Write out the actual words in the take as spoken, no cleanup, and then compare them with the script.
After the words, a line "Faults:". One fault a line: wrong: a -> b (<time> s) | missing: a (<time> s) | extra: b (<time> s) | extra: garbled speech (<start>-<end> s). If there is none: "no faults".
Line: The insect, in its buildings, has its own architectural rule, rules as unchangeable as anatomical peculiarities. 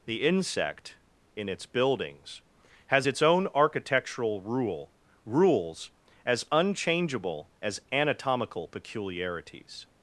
The insect, in its buildings, has its own architectural rule, rules as unchangeable as anatomical peculiarities.
Faults:
no faults